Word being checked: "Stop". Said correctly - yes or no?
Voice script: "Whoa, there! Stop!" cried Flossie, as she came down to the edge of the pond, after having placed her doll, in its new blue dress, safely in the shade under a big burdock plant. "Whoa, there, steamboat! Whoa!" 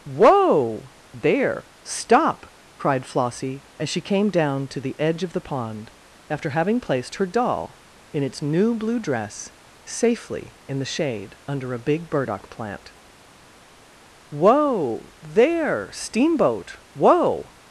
yes